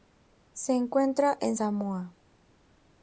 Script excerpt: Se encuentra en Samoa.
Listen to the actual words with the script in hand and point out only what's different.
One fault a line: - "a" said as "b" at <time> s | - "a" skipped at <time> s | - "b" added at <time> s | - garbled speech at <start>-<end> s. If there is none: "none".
none